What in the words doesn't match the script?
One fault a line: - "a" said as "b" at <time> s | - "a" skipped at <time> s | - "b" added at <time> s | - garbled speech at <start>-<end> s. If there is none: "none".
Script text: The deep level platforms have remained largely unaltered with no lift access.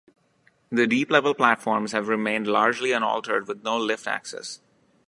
none